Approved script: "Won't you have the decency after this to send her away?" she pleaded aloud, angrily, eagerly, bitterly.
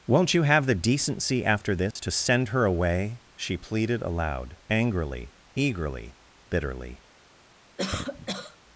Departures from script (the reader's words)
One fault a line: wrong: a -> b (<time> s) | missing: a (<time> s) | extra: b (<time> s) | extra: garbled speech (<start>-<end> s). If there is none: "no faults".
no faults